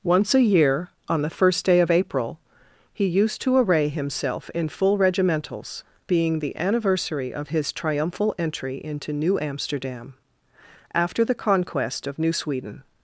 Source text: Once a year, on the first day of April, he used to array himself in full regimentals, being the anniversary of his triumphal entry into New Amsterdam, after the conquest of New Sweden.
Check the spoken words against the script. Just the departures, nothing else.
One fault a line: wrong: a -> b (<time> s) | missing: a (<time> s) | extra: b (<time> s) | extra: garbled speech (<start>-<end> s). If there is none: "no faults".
no faults